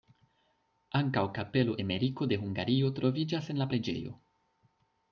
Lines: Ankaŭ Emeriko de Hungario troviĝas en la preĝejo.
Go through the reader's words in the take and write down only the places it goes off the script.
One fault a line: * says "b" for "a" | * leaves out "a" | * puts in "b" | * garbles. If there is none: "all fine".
* puts in "kapelo"